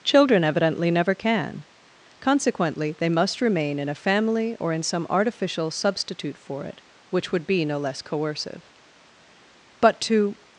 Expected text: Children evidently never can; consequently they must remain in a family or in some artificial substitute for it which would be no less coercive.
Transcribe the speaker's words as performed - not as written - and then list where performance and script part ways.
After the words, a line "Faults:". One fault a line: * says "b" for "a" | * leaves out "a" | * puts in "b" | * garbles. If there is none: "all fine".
Children evidently never can; consequently they must remain in a family or in some artificial substitute for it which would be no less coercive. But to
Faults:
* puts in "But to"